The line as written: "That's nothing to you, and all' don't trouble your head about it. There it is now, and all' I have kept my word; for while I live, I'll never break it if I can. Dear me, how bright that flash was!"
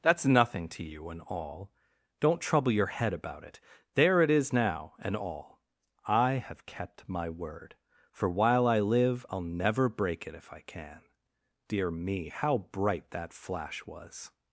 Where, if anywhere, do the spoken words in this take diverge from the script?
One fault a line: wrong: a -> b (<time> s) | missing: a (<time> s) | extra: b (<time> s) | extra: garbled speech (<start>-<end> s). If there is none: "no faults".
no faults